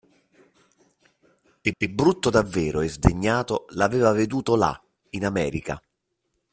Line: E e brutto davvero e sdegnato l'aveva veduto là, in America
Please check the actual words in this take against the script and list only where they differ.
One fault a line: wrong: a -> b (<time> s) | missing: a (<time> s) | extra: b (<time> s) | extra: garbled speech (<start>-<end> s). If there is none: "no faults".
no faults